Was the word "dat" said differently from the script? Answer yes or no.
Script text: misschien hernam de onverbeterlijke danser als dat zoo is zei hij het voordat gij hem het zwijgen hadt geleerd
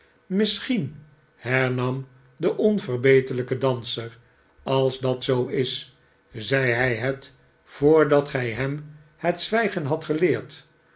no